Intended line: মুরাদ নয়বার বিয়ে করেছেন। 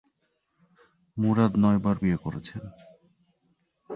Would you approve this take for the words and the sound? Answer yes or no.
yes